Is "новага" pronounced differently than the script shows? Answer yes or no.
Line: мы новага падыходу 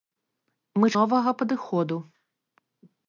no